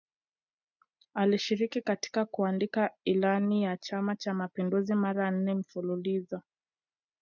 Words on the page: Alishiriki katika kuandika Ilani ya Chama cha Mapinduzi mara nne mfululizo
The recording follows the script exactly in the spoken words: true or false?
true